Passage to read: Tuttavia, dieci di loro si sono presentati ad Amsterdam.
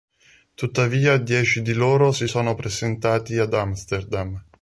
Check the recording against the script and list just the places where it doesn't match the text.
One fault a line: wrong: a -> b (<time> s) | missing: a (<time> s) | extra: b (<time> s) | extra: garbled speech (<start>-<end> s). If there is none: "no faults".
no faults